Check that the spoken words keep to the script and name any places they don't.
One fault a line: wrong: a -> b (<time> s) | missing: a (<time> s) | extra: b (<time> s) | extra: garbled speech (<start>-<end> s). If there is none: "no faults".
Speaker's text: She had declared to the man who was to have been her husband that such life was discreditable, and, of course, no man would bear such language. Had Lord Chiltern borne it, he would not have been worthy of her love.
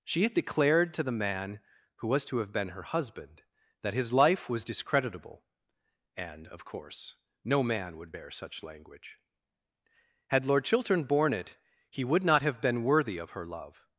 wrong: such -> his (3.9 s)